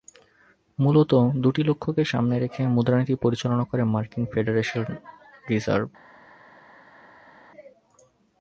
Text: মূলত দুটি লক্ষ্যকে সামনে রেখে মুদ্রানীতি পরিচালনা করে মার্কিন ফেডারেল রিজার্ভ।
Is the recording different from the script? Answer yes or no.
no